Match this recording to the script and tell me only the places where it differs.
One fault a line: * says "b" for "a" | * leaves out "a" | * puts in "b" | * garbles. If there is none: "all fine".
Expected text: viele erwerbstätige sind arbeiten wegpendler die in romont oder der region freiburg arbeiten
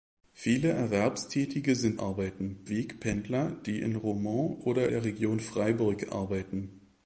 all fine